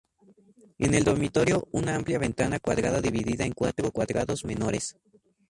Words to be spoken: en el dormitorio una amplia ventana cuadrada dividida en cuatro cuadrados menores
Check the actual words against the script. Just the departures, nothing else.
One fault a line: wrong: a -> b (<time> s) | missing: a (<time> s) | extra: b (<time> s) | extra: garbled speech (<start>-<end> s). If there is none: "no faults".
no faults